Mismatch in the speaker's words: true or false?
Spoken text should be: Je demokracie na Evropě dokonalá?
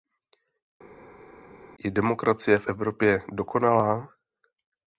true